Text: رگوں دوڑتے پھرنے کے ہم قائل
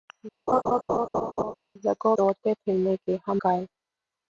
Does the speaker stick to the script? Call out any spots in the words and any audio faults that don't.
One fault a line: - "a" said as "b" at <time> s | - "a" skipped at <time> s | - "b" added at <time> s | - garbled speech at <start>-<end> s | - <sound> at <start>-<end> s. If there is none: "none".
- laugh at 0.5-1.5 s